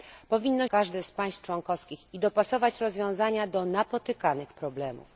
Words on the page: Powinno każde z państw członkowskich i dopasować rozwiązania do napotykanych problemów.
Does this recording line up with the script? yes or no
yes